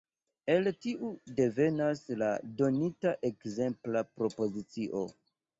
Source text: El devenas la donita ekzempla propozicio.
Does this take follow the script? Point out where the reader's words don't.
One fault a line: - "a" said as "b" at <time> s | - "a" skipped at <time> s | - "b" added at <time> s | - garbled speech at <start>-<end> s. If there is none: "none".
- "tiu" added at 0.8 s